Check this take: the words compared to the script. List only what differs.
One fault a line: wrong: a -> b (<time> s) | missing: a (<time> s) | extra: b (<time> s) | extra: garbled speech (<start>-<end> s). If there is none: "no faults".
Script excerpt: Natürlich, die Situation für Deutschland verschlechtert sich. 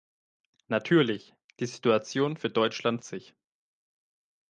missing: verschlechtert (3.0 s)